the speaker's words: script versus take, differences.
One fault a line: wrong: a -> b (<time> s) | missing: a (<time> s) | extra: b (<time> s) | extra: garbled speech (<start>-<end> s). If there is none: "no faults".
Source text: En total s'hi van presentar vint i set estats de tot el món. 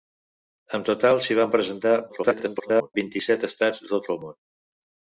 extra: garbled speech (2.1-2.9 s)